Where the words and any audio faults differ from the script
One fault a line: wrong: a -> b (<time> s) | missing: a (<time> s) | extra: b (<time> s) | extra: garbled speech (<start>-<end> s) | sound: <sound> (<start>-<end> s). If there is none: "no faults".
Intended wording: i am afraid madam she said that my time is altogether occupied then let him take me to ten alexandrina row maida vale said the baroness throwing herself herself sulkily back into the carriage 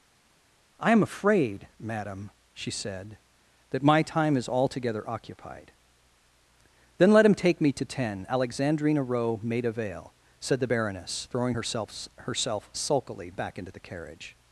no faults